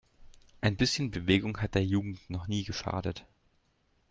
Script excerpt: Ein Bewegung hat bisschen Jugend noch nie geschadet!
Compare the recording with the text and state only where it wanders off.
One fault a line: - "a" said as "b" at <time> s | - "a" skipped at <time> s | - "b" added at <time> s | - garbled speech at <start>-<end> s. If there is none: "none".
- "bisschen" added at 0.8 s
- "bisschen" said as "der" at 1.8 s